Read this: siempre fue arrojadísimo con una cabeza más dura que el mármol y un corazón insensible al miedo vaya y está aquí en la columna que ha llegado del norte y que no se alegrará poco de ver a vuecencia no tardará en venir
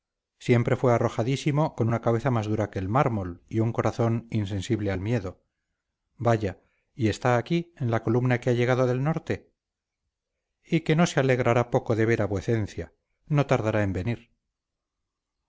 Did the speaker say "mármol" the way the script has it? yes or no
yes